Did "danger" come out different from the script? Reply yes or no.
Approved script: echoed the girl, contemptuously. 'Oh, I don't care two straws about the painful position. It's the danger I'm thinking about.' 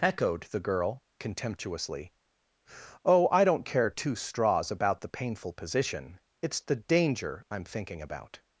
no